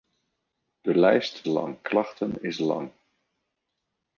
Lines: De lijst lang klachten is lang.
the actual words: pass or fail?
pass